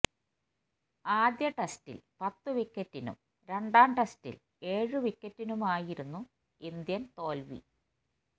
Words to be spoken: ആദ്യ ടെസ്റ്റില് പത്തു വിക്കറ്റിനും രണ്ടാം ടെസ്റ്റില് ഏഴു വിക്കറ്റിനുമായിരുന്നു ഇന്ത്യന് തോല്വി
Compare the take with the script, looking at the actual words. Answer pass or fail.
pass